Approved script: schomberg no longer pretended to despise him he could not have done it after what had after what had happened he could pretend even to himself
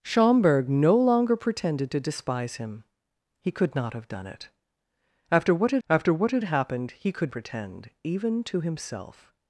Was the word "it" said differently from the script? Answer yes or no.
no